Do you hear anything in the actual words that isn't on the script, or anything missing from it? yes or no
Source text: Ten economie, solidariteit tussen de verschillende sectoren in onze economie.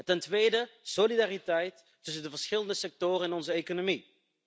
yes